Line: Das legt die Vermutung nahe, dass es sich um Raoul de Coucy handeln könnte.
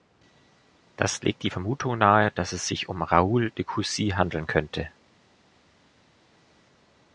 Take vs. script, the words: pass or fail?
pass